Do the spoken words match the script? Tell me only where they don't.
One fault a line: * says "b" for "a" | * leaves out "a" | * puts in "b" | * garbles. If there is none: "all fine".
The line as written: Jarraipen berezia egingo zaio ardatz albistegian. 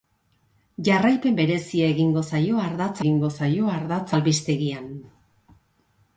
* puts in "egingo zaio ardatz"